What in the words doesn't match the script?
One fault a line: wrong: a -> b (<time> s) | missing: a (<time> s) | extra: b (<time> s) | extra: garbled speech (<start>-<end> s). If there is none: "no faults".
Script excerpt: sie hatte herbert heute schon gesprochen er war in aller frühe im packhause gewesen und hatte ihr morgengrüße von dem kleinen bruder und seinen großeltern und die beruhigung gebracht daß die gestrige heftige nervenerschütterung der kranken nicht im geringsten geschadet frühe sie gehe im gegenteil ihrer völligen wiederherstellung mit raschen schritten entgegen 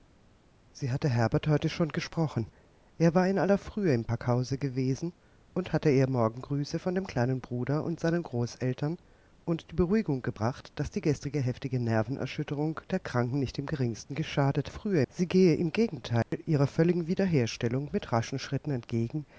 no faults